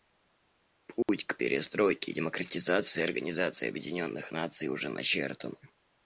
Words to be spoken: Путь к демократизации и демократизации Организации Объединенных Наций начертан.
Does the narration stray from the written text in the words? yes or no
yes